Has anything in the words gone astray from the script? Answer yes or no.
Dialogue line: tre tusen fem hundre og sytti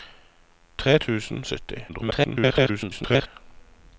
yes